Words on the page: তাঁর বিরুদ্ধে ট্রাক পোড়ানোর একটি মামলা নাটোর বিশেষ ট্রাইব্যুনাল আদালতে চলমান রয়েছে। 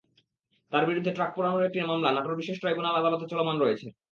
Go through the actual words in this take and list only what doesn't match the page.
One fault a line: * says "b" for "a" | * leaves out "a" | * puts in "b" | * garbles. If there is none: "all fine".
all fine